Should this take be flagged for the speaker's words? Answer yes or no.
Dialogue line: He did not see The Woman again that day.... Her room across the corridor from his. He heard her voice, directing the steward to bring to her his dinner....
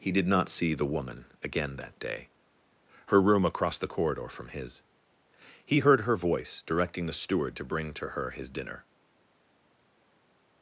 no